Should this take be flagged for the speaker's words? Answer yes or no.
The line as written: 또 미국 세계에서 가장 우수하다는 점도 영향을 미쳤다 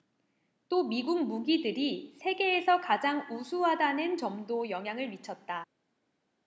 yes